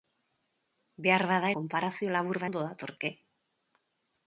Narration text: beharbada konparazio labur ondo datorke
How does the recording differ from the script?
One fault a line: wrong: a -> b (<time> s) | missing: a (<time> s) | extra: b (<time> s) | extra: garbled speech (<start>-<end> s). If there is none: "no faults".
no faults